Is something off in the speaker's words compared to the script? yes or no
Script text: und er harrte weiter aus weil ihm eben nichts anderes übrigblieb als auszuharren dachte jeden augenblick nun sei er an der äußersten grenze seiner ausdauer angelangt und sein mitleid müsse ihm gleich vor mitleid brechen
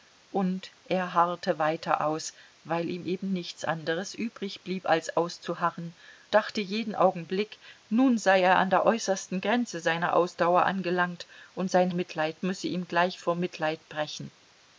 no